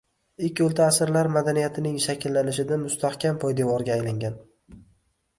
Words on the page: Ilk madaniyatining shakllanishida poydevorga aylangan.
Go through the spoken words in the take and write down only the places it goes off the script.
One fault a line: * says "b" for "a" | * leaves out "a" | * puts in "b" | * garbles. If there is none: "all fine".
* puts in "o‘rta asrlar"
* puts in "mustahkam"